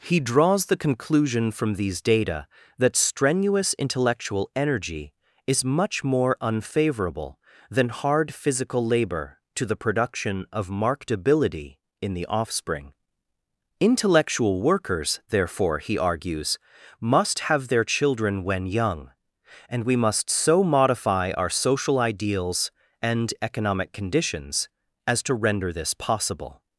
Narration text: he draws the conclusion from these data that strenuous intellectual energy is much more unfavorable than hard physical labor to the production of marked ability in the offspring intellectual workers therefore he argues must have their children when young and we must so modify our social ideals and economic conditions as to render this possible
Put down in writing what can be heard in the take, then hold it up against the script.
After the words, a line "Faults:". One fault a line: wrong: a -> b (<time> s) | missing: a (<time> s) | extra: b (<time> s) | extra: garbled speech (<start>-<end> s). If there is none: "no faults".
he draws the conclusion from these data that strenuous intellectual energy is much more unfavorable than hard physical labor to the production of marked ability in the offspring intellectual workers therefore he argues must have their children when young and we must so modify our social ideals and economic conditions as to render this possible
Faults:
no faults